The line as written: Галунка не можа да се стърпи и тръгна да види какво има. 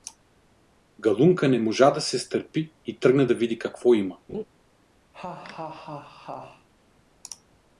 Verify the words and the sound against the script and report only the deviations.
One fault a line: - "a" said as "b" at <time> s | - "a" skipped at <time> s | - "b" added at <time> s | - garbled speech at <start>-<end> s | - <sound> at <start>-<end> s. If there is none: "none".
- laugh at 4.3-4.4 s
- laugh at 5.1-6.7 s